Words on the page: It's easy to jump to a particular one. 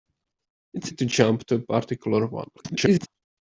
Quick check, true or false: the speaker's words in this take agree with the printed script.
false